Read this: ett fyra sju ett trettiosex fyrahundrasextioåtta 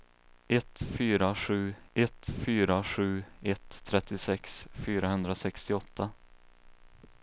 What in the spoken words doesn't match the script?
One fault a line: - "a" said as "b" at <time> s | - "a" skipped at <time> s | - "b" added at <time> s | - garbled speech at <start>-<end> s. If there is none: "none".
- "fyra sju ett" added at 2.3 s